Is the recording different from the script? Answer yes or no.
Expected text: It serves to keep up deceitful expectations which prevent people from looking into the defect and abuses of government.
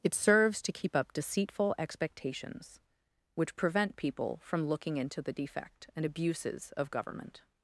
no